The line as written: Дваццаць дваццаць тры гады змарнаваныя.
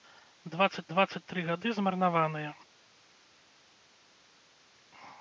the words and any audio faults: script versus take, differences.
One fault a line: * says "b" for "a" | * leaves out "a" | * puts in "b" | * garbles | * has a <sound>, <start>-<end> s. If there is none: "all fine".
all fine